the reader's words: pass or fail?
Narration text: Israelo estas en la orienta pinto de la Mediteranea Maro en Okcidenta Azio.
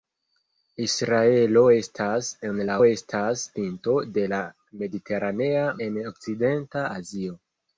fail